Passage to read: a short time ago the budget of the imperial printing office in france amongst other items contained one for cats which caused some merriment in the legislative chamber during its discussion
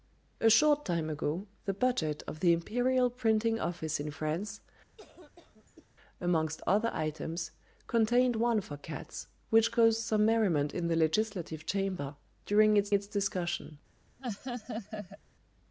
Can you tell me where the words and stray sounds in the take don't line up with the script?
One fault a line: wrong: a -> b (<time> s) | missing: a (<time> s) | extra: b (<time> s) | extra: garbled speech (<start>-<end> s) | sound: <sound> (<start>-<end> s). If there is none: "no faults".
sound: cough (5.0-5.9 s)
extra: its (12.9 s)
sound: laugh (14.2-15.2 s)